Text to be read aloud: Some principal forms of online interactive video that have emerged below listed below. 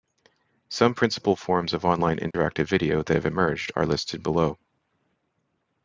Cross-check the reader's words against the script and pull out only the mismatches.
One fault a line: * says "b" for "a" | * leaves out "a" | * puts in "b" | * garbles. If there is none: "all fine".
* says "are" for "below"